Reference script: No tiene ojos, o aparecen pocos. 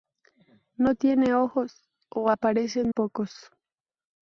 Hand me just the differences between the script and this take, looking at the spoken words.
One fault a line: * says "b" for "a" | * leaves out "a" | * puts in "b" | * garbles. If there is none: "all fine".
all fine